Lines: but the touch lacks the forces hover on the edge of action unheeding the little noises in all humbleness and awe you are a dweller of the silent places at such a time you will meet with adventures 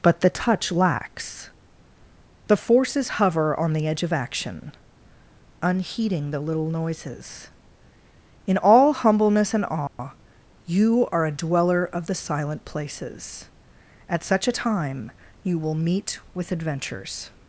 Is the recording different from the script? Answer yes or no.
no